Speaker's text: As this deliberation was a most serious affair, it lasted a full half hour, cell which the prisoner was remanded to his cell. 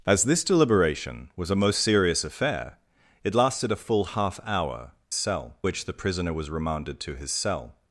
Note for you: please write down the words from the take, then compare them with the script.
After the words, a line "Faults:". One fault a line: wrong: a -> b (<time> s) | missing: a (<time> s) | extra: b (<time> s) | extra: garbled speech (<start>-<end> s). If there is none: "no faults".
As this deliberation was a most serious affair, it lasted a full half hour, cell which the prisoner was remanded to his cell.
Faults:
no faults